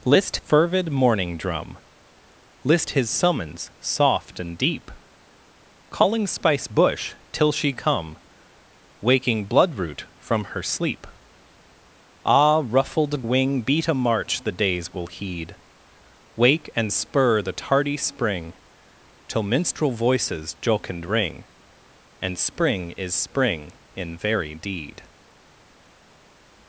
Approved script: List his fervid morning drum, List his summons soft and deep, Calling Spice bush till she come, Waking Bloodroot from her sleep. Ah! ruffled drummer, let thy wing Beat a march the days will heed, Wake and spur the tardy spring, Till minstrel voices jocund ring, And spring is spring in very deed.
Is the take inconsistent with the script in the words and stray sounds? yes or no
yes